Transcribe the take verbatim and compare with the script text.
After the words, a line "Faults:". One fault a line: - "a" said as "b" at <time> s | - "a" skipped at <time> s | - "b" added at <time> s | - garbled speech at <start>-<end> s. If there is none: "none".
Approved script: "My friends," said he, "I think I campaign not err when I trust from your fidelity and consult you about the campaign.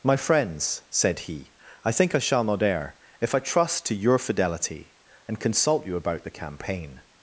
"My friends," said he, "I think I shall not err if I trust to your fidelity and consult you about the campaign.
Faults:
- "campaign" said as "shall" at 2.2 s
- "when" said as "if" at 3.2 s
- "from" said as "to" at 3.9 s